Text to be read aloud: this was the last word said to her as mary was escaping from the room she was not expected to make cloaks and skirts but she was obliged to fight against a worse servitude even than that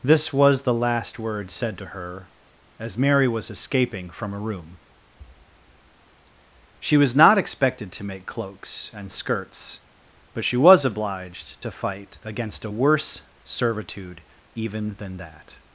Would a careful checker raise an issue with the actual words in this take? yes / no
yes